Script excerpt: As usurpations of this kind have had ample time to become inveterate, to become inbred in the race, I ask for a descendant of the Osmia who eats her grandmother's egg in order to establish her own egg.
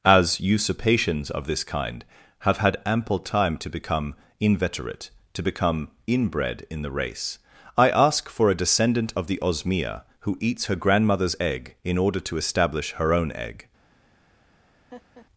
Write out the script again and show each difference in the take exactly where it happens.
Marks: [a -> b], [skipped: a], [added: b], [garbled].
As usurpations of this kind have had ample time to become inveterate, to become inbred in the race, I ask for a descendant of the Osmia who eats her grandmother's egg in order to establish her own egg.